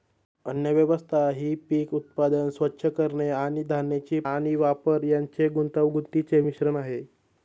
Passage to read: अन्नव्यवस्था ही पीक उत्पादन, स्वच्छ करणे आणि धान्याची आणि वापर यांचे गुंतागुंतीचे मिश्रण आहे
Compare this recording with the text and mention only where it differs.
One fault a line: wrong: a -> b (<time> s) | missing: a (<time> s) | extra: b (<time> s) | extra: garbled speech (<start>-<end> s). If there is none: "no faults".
no faults